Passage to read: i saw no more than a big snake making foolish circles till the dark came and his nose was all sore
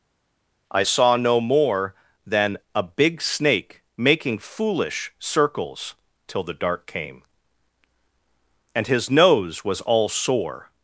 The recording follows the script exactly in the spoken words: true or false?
true